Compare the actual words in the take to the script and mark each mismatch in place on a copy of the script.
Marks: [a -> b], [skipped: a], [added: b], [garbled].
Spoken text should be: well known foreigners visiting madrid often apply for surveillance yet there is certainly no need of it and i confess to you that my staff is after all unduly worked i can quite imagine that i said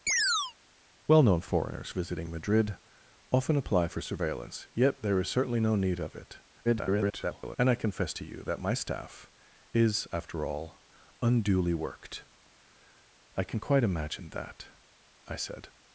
well known foreigners visiting madrid often apply for surveillance yet there is certainly no need of it [garbled] and i confess to you that my staff is after all unduly worked i can quite imagine that i said